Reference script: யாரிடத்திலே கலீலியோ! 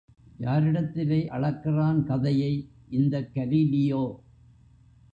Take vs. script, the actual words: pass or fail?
fail